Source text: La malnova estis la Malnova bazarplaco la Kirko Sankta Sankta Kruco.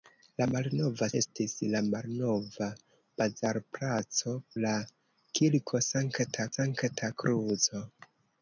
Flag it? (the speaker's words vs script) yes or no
no